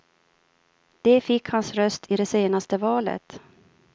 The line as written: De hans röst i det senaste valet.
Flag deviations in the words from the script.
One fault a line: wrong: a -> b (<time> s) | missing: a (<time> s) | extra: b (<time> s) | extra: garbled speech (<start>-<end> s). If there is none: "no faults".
extra: fick (1.2 s)